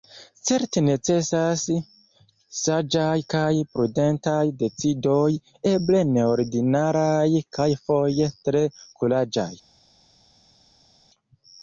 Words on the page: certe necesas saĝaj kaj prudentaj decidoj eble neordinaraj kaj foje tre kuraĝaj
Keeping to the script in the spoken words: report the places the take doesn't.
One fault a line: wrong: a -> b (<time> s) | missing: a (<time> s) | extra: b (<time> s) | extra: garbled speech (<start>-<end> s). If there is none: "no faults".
no faults